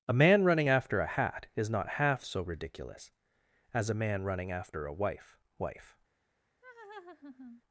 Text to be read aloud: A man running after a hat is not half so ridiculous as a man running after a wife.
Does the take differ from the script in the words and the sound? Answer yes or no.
yes